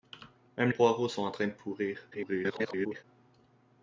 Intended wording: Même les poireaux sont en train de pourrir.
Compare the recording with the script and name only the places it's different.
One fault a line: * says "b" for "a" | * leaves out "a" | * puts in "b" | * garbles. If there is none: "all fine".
* leaves out "les"
* garbles